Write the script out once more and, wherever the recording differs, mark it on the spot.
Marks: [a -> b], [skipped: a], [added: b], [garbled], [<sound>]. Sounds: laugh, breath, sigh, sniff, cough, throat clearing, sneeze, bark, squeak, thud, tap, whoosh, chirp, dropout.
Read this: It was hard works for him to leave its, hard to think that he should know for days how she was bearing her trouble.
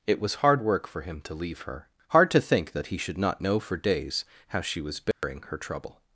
It was hard [works -> work] for him to leave [its, -> her] hard to think that he should [added: not] know for days how she was bearing [dropout] her trouble.